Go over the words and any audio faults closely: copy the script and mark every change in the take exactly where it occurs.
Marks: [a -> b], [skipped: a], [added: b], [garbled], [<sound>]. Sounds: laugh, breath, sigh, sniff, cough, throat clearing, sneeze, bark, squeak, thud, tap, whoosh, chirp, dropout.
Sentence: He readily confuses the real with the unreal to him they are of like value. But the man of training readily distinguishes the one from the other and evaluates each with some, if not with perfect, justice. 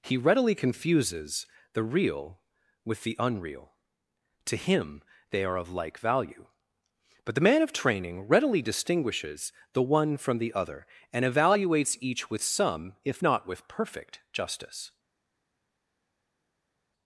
He readily confuses the real with the unreal to him they are of like value. But the man of training readily distinguishes the one from the other and evaluates each with some, if not with perfect, justice.